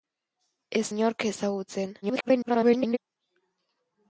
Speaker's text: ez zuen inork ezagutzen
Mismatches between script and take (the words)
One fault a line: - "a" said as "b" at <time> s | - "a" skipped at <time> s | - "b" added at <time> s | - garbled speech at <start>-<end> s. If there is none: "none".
- "zuen" skipped at 0.8 s
- garbled speech at 2.0-3.0 s